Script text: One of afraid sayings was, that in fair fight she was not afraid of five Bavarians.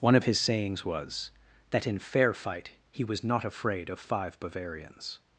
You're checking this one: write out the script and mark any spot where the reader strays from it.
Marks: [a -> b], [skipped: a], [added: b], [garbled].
One of [afraid -> his] sayings was, that in fair fight [she -> he] was not afraid of five Bavarians.